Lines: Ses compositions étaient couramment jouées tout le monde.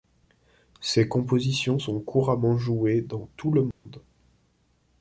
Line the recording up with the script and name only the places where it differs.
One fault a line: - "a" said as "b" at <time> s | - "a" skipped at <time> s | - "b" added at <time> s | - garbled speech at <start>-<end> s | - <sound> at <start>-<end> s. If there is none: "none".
- "étaient" said as "sont" at 1.7 s
- "dans" added at 3.0 s
- dropout at 3.7-3.9 s